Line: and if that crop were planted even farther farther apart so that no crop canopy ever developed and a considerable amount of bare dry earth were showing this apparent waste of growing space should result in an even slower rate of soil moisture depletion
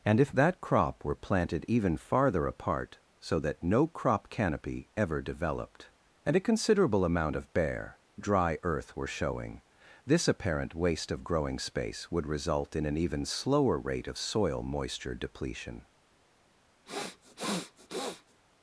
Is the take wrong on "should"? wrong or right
wrong